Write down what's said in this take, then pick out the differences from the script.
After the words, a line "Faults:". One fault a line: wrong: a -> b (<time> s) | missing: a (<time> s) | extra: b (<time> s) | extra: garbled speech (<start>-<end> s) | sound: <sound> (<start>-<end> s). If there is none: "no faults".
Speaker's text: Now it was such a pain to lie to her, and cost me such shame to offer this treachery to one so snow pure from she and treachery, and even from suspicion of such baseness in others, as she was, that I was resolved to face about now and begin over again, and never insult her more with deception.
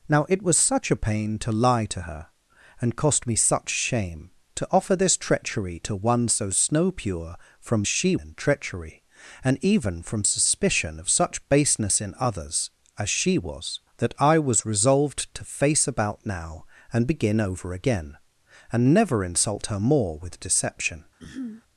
Now it was such a pain to lie to her, and cost me such shame to offer this treachery to one so snow pure from she and treachery, and even from suspicion of such baseness in others, as she was, that I was resolved to face about now and begin over again, and never insult her more with deception.
Faults:
sound: throat clearing (21.2-21.6 s)